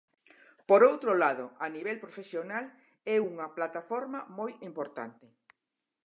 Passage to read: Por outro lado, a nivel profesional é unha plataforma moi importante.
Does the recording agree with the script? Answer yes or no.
yes